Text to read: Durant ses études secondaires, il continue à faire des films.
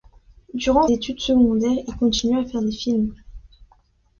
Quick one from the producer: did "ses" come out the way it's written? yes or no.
no